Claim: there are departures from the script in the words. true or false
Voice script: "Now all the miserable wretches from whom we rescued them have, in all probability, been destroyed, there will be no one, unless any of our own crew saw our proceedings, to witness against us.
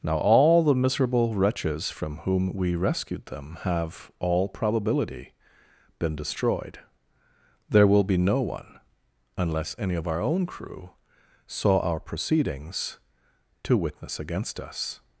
true